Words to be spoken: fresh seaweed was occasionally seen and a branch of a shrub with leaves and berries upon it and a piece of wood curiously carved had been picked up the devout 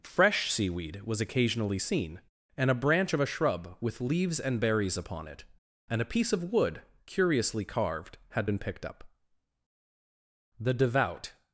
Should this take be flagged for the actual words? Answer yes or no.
no